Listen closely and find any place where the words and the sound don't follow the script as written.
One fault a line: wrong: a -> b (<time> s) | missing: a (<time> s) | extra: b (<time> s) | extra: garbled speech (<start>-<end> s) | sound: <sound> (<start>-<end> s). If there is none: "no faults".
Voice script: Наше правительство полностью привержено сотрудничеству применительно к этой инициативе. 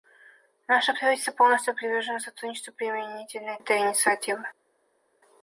missing: к (3.6 s)